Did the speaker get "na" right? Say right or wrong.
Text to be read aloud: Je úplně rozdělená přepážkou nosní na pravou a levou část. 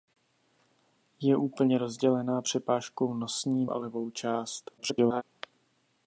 wrong